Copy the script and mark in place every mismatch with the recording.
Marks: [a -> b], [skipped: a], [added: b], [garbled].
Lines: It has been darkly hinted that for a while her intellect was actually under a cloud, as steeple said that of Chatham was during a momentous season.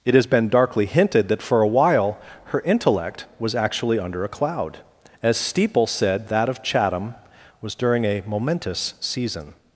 It has been darkly hinted that for a while her intellect was actually under a cloud, as steeple said that of Chatham was during a momentous season.